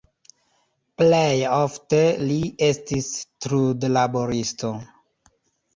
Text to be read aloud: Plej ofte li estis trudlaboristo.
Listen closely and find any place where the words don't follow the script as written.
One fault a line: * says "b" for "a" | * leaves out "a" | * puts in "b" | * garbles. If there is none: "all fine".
all fine